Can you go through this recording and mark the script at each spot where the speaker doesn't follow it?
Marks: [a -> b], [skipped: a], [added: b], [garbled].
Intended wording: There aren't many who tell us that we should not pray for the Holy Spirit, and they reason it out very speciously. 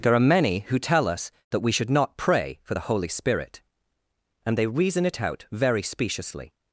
There [aren't -> are] many who tell us that we should not pray for the Holy Spirit, and they reason it out very speciously.